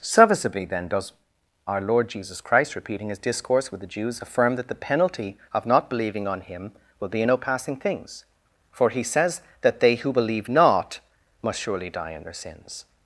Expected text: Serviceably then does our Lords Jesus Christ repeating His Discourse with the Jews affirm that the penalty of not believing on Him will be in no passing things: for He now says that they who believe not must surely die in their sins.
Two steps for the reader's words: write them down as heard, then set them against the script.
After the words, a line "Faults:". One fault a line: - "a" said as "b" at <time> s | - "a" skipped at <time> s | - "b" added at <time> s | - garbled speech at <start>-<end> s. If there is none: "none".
Serviceably then does our Lord Jesus Christ repeating His Discourse with the Jews affirm that the penalty of not believing on Him will be in no passing things: for He says that they who believe not must surely die in their sins.
Faults:
- "Lords" said as "Lord" at 1.8 s
- "now" skipped at 9.0 s